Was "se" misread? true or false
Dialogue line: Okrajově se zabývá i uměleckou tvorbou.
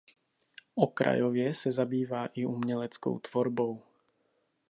false